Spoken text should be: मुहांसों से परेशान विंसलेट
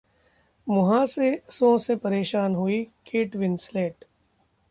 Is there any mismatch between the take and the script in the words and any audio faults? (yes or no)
yes